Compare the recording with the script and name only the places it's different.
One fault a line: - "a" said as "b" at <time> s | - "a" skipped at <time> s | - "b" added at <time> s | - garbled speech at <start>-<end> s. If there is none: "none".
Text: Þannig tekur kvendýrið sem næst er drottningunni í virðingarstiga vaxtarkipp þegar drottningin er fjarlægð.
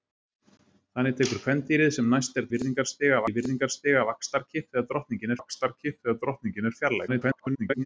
- "drottningunni" said as "virðingarstiga" at 2.5 s
- "vaxtarkipp þegar drottningin" added at 5.4 s
- garbled speech at 7.1-7.9 s